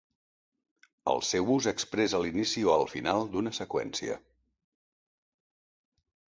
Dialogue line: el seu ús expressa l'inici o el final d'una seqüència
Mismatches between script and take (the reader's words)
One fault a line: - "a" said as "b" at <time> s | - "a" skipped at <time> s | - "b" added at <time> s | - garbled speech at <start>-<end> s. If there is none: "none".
none